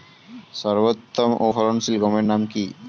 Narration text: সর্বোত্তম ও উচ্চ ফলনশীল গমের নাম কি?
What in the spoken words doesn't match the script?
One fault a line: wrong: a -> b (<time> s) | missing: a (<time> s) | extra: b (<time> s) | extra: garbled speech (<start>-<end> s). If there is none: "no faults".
missing: উচ্চ (1.5 s)